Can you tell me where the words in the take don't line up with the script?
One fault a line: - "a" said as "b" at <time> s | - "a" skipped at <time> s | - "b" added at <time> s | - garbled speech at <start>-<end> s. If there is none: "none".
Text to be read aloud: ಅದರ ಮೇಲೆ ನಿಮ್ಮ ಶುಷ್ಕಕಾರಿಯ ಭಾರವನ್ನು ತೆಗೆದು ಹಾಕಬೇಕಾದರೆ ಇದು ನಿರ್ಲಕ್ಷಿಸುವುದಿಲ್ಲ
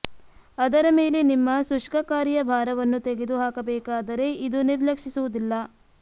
none